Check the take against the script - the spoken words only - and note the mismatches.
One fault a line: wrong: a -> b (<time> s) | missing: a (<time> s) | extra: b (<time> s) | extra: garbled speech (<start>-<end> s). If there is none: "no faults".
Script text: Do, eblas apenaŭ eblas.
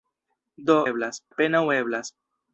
no faults